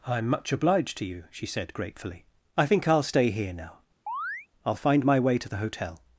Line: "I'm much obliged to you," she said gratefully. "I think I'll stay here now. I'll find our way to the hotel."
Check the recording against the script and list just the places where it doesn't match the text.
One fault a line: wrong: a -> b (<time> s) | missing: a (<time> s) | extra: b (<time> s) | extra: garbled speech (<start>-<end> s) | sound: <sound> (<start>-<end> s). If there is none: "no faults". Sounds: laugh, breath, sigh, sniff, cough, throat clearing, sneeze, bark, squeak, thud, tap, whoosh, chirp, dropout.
sound: chirp (4.1-4.5 s)
wrong: our -> my (5.1 s)